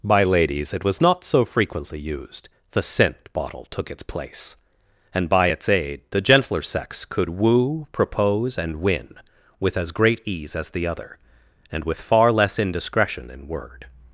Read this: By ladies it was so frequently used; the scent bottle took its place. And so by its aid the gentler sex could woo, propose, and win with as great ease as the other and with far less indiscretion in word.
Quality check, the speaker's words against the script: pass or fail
fail